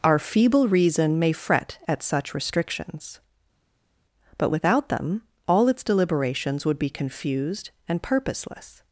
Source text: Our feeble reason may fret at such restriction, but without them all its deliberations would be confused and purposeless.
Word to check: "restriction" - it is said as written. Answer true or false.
false